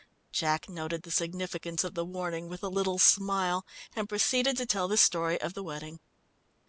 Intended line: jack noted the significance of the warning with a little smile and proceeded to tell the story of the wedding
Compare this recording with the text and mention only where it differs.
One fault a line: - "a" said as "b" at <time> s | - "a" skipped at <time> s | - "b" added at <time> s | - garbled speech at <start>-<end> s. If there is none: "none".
none